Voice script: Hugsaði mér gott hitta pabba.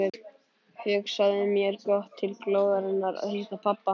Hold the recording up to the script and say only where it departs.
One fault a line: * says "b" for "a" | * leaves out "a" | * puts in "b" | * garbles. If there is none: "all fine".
* puts in "til glóðarinnar að"